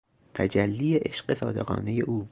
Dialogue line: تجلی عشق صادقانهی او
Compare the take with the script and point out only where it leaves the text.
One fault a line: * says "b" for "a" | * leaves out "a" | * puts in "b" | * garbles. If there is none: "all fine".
all fine